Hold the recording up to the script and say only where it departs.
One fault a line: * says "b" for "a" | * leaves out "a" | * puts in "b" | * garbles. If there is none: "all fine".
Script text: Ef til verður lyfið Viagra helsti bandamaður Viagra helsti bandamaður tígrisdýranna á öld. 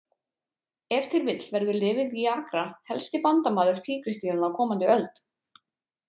* puts in "vill"
* leaves out "Viagra helsti bandamaður"
* puts in "komandi"